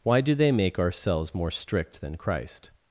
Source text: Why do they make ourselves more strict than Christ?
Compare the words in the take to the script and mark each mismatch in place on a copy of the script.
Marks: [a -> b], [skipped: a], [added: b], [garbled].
Why do they make ourselves more strict than Christ?